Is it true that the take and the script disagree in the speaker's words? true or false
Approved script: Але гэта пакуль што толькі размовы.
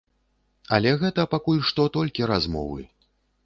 false